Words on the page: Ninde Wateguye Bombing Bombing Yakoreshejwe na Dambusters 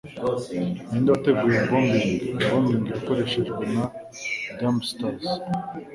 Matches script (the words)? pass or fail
pass